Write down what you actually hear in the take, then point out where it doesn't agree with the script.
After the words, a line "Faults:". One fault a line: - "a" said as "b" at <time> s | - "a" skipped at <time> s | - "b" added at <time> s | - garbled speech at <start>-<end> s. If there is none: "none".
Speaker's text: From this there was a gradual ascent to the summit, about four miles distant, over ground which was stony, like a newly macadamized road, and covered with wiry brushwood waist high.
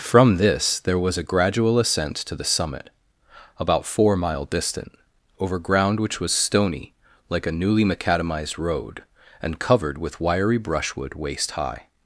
From this there was a gradual ascent to the summit, about four mile distant, over ground which was stony, like a newly macadamized road, and covered with wiry brushwood waist high.
Faults:
- "miles" said as "mile" at 4.2 s